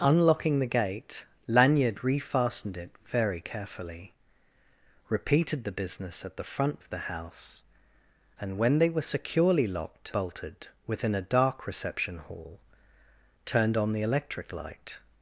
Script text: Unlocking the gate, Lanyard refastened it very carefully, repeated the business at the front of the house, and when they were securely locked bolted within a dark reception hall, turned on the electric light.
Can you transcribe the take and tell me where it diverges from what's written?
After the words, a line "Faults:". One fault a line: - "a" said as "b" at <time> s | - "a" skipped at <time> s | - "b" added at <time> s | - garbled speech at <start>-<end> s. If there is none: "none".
Unlocking the gate, Lanyard refastened it very carefully, repeated the business at the front of the house, and when they were securely locked bolted within a dark reception hall, turned on the electric light.
Faults:
none